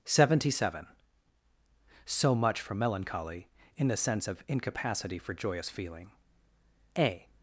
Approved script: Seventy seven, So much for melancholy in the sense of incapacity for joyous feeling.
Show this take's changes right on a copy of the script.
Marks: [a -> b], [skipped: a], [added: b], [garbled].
Seventy seven, So much for melancholy in the sense of incapacity for joyous feeling. [added: A]